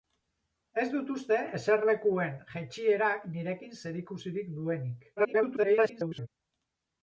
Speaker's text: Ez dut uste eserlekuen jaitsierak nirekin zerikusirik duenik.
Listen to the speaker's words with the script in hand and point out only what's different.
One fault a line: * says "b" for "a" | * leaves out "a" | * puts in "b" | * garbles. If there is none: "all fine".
* garbles